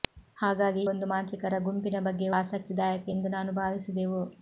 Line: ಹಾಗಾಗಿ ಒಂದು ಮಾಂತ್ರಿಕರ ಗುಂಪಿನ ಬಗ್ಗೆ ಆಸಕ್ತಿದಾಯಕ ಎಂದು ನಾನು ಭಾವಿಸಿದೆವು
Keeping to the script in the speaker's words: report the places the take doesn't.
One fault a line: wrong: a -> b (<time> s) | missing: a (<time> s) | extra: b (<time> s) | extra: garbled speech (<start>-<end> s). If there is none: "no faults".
no faults